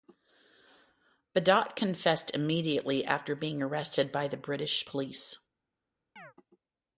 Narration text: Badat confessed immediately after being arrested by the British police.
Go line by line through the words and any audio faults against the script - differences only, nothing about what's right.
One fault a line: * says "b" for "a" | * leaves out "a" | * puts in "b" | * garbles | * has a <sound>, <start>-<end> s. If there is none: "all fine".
* has a chirp, 6.2-6.3 s